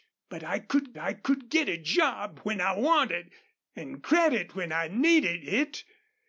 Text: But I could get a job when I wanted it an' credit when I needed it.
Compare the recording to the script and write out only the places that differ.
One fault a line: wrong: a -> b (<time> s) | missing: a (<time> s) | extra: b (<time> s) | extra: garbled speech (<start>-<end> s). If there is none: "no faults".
extra: I could (1.0 s)
missing: it (3.3 s)